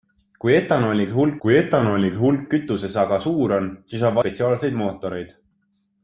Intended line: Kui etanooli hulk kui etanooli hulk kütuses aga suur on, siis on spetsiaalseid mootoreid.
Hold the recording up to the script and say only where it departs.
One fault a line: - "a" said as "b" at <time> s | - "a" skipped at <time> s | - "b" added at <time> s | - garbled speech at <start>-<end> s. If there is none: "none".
none